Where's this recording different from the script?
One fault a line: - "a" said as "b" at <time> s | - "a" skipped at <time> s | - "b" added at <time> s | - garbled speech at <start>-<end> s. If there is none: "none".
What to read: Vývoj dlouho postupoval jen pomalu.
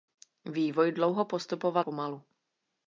- "jen" skipped at 1.9 s